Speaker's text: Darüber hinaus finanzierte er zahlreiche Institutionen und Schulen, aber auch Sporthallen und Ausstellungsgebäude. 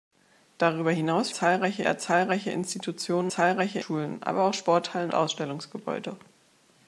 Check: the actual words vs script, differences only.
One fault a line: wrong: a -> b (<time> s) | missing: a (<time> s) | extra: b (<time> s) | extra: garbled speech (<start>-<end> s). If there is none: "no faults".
wrong: finanzierte -> zahlreiche (1.3 s)
wrong: und -> zahlreiche (3.3 s)
missing: und (5.1 s)